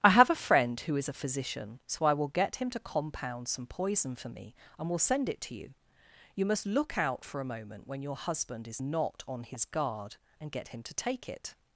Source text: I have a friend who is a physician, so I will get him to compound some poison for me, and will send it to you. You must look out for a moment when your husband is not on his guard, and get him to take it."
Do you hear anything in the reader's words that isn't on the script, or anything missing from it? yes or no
no